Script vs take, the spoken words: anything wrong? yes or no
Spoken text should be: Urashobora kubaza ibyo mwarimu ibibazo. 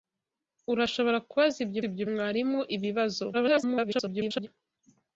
yes